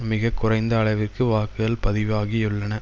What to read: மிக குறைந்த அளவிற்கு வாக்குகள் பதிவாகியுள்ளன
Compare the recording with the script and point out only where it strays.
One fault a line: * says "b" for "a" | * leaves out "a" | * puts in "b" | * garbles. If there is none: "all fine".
all fine